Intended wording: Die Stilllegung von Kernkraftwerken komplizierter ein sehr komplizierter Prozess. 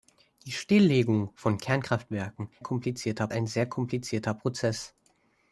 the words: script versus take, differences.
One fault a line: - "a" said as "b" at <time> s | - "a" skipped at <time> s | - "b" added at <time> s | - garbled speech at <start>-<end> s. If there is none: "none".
none